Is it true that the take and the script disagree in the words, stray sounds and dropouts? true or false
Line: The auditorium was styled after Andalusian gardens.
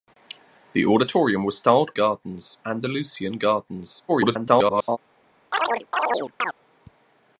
true